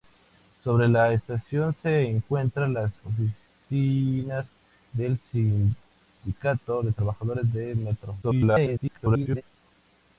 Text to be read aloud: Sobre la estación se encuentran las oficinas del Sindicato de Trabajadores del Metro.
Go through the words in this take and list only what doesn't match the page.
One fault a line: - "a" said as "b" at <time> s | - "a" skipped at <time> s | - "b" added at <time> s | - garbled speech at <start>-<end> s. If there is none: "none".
- garbled speech at 8.2-9.4 s